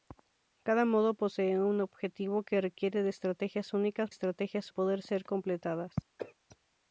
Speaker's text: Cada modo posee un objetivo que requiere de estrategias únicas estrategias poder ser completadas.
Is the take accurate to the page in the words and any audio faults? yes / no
no